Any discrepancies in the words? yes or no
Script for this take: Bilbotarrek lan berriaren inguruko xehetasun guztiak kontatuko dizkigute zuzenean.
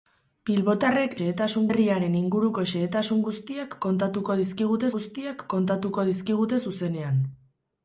yes